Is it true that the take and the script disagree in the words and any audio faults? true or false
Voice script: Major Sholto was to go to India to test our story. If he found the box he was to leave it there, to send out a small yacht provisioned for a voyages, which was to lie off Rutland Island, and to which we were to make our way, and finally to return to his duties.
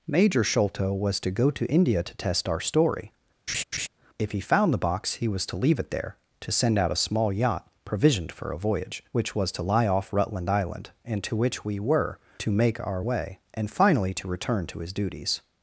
true